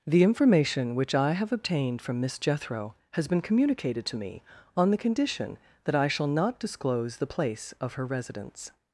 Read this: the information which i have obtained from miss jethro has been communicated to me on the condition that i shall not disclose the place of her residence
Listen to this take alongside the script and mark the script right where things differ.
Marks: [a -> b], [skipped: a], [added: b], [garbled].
the information which i have obtained from miss jethro has been communicated to me on the condition that i shall not disclose the place of her residence